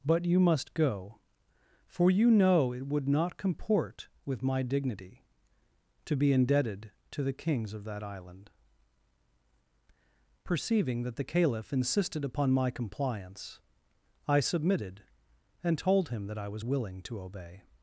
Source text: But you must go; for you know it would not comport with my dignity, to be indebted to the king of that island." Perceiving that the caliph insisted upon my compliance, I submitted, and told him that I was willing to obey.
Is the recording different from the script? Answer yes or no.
yes